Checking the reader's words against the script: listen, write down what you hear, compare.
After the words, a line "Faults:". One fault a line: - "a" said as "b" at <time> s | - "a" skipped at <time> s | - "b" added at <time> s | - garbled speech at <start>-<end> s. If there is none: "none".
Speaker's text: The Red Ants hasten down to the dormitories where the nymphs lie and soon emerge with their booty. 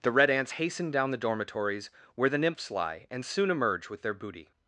The Red Ants hasten down the dormitories where the nymphs lie and soon emerge with their booty.
Faults:
- "to" skipped at 1.1 s